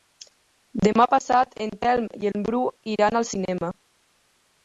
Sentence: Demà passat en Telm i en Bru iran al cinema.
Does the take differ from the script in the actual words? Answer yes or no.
no